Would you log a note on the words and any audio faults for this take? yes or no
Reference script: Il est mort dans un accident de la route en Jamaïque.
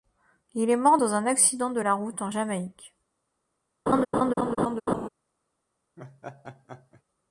yes